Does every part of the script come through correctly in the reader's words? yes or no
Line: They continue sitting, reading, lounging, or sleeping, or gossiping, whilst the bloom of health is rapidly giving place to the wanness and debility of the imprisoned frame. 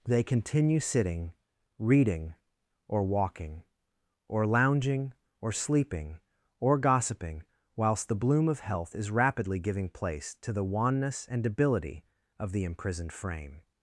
no